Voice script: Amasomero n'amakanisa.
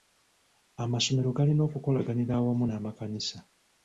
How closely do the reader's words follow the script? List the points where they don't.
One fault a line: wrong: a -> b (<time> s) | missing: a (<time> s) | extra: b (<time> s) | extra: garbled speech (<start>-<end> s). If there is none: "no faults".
extra: galina okukolaganira awamu (1.4 s)